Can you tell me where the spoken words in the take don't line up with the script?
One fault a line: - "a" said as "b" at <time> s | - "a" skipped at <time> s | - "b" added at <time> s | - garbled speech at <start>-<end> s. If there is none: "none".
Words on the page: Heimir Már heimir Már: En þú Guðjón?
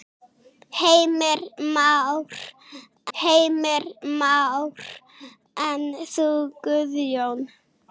none